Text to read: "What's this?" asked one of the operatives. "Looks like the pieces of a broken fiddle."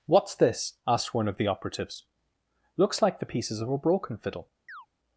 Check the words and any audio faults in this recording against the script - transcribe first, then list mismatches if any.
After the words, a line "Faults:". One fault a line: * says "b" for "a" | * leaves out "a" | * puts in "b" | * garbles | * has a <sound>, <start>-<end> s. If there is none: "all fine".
"What's this?" asked one of the operatives. "Looks like the pieces of a broken fiddle."
Faults:
* has a chirp, 4.7-4.9 s